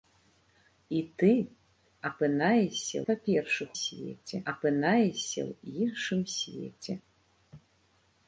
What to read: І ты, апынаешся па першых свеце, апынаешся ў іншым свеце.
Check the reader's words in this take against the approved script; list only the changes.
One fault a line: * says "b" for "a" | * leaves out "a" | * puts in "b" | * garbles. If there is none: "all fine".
all fine